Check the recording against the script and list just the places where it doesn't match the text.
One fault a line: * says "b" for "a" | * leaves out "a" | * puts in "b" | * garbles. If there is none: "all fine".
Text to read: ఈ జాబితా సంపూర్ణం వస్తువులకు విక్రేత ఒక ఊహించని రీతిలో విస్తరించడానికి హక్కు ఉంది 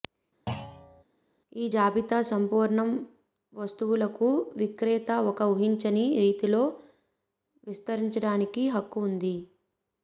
all fine